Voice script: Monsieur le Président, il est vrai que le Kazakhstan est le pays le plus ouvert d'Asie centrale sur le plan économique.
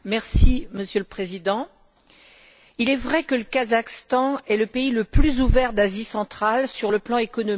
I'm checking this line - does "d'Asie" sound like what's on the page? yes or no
yes